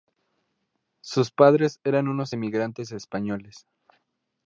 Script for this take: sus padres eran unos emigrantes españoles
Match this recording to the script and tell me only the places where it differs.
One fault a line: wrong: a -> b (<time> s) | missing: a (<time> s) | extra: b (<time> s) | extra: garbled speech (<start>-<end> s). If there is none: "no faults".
no faults